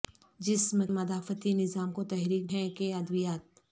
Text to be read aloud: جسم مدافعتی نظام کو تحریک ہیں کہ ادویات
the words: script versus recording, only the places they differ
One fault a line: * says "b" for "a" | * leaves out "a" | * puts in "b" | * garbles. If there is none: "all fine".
all fine